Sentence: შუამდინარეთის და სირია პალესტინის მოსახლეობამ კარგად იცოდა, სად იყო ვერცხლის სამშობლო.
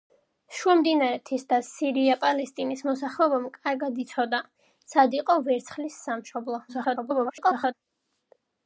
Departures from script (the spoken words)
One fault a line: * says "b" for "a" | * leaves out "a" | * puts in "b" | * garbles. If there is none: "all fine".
* garbles